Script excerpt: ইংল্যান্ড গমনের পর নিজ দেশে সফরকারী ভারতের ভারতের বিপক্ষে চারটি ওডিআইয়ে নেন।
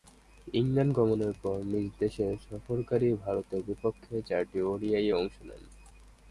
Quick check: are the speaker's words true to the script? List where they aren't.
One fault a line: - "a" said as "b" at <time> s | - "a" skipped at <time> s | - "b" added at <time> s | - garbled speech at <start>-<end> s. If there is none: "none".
- "ভারতের" skipped at 3.6 s
- "অংশ" added at 5.1 s